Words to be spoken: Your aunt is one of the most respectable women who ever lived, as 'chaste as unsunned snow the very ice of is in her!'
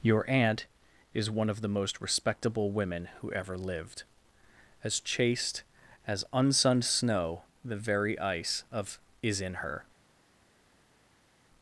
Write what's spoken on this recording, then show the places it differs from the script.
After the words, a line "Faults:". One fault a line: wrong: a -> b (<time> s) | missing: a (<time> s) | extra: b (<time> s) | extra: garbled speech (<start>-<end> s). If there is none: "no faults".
Your aunt is one of the most respectable women who ever lived, as 'chaste as unsunned snow the very ice of is in her!'
Faults:
no faults